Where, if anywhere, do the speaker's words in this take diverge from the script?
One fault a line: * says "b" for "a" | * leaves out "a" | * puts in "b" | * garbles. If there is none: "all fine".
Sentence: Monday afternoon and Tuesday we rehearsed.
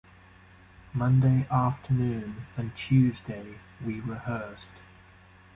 all fine